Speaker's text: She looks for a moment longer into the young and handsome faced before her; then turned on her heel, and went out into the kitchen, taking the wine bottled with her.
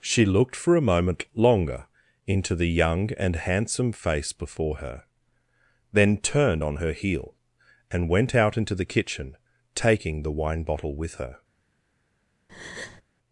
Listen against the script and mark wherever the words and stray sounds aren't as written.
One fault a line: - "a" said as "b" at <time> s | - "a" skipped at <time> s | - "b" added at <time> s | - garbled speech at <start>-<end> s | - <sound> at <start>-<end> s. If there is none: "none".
- "looks" said as "looked" at 0.2 s
- "faced" said as "face" at 3.9 s
- "bottled" said as "bottle" at 10.6 s
- breath at 12.5-13.0 s